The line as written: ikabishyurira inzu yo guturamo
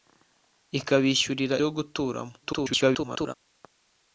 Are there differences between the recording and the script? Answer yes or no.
yes